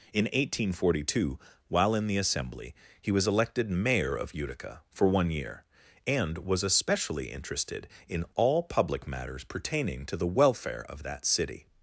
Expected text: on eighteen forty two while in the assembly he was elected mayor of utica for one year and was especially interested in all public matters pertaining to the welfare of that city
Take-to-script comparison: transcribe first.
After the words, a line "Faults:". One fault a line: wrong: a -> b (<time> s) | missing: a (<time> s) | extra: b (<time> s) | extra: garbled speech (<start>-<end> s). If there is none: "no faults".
in eighteen forty two while in the assembly he was elected mayor of utica for one year and was especially interested in all public matters pertaining to the welfare of that city
Faults:
wrong: on -> in (0.1 s)